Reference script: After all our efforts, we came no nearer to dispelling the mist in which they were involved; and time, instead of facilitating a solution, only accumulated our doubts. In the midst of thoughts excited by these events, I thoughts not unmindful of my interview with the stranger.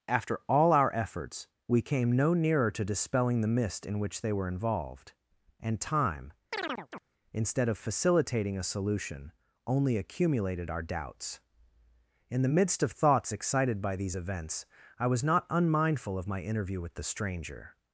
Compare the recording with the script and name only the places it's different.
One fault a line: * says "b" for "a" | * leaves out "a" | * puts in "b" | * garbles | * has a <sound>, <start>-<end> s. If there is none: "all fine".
* has a chirp, 6.5-7.0 s
* says "was" for "thoughts"